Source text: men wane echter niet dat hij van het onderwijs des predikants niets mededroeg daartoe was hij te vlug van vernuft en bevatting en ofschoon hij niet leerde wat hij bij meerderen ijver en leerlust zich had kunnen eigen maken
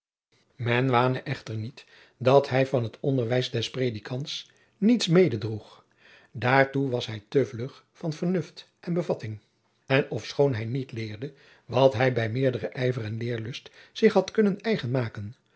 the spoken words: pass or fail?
pass